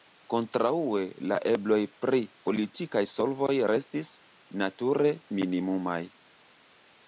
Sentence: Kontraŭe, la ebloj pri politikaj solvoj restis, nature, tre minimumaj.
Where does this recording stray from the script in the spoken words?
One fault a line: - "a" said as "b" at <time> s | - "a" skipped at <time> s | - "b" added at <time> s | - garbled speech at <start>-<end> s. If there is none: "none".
- "tre" skipped at 5.1 s